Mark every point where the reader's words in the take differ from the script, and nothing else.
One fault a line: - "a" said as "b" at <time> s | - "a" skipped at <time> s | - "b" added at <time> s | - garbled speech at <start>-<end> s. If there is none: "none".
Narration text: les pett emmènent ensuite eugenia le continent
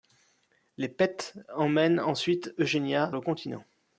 none